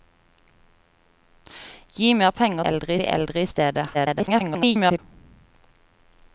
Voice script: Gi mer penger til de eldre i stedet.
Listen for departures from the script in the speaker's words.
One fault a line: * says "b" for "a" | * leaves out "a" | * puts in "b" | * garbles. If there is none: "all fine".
* says "eldre" for "til"
* garbles